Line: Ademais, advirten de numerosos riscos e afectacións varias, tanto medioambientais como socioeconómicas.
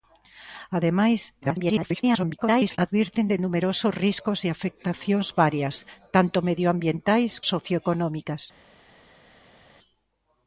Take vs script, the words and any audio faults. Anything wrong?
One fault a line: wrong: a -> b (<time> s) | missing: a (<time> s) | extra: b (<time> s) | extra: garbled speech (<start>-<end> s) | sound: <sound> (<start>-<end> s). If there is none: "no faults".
extra: garbled speech (1.4-2.8 s)
missing: como (7.3 s)